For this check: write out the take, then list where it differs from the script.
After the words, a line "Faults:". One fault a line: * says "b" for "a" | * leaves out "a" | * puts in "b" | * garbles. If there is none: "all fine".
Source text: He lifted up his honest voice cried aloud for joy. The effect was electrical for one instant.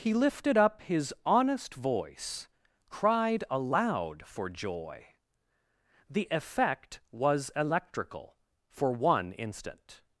He lifted up his honest voice cried aloud for joy. The effect was electrical for one instant.
Faults:
all fine